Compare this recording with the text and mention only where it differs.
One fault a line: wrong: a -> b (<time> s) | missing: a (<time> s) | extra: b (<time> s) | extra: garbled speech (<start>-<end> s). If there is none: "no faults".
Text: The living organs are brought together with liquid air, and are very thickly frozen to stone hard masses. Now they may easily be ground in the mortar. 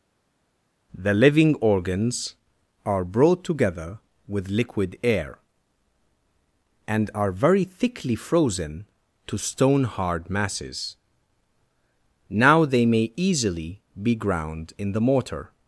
no faults